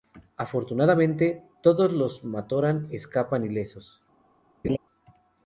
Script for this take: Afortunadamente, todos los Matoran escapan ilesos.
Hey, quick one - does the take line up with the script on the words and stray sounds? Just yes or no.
no